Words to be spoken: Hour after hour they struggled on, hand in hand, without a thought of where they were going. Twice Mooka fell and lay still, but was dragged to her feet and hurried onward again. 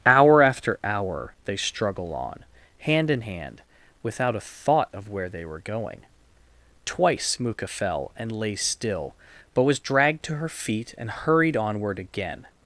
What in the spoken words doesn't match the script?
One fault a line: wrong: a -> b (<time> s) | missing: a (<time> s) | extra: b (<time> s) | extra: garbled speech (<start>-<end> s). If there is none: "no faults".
wrong: struggled -> struggle (1.6 s)